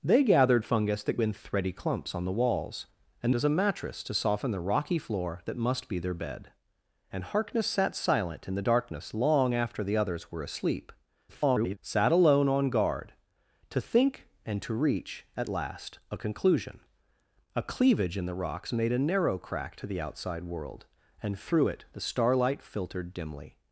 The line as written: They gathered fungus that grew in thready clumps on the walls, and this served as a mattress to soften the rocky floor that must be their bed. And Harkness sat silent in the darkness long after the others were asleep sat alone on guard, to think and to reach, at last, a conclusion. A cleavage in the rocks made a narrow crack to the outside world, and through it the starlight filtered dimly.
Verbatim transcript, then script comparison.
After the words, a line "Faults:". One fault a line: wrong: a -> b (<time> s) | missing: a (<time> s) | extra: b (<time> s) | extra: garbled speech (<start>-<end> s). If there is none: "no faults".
They gathered fungus that in thready clumps on the walls, and as a mattress to soften the rocky floor that must be their bed. And Harkness sat silent in the darkness long after the others were asleep [garbled] sat alone on guard, to think and to reach, at last, a conclusion. A cleavage in the rocks made a narrow crack to the outside world, and through it the starlight filtered dimly.
Faults:
missing: grew (1.2 s)
missing: this served (3.3 s)
extra: garbled speech (11.3-11.8 s)